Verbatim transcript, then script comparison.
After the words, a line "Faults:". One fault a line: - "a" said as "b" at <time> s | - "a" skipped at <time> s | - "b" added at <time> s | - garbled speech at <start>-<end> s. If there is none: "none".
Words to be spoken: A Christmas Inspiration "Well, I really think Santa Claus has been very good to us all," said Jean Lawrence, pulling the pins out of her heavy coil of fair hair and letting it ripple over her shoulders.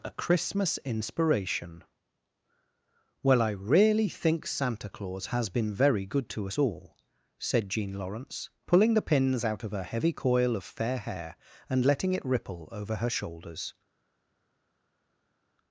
A Christmas Inspiration "Well, I really think Santa Claus has been very good to us all," said Jean Lawrence, pulling the pins out of her heavy coil of fair hair and letting it ripple over her shoulders.
Faults:
none